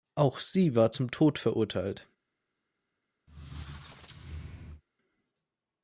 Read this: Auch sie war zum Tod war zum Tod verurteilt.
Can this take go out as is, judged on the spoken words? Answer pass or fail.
fail